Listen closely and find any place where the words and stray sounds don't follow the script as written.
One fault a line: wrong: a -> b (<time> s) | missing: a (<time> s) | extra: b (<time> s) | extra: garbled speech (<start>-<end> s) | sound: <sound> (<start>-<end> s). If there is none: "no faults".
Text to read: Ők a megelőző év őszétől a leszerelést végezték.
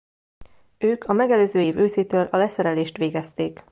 no faults